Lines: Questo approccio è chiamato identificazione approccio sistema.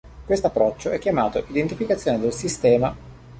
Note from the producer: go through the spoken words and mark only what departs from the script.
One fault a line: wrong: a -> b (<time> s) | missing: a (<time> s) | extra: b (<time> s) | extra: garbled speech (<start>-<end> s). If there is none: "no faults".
wrong: approccio -> del (2.2 s)